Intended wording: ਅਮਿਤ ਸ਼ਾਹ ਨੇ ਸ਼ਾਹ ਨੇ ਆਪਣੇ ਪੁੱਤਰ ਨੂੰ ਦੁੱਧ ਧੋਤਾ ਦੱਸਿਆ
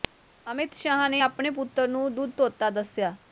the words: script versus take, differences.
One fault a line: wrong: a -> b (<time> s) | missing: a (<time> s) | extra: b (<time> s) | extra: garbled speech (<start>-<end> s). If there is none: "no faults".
missing: ਸ਼ਾਹ ਨੇ (1.2 s)